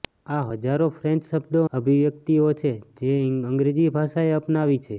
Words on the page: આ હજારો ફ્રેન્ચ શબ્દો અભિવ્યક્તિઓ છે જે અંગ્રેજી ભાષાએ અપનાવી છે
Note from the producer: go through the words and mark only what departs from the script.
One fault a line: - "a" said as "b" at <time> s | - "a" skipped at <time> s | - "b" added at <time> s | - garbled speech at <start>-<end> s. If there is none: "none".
none